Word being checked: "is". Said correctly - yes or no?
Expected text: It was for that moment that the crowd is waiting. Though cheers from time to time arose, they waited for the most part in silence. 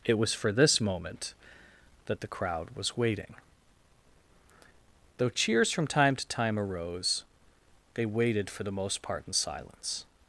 no